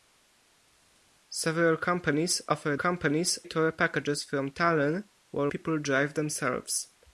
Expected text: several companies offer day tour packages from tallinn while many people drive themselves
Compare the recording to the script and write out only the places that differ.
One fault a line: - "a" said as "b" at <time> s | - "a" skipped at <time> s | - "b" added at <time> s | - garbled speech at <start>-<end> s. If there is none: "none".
- "day" said as "companies" at 2.7 s
- "many" skipped at 5.5 s